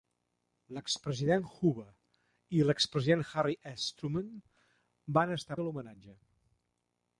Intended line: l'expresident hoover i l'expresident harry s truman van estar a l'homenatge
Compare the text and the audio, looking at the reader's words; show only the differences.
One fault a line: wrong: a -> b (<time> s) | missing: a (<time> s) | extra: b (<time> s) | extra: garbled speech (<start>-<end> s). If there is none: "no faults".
no faults